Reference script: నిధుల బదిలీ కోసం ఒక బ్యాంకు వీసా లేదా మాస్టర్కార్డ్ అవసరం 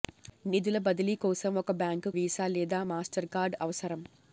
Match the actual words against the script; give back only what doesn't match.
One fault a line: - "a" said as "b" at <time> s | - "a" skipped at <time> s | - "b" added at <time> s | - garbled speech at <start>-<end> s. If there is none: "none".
none